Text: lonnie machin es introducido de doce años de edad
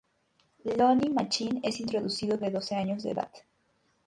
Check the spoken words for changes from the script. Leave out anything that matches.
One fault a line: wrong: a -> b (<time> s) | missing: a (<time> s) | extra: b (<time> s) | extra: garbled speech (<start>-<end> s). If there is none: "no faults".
no faults